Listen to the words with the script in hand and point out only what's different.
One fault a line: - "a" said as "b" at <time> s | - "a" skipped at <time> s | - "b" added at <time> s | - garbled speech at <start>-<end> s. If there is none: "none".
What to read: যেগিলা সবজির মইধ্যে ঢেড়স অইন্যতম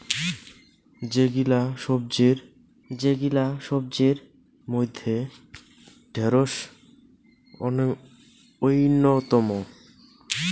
- "যেগিলা সবজির" added at 2.9 s